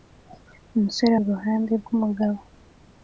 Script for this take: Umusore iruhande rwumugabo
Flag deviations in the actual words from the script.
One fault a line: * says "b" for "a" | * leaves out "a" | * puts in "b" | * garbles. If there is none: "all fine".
all fine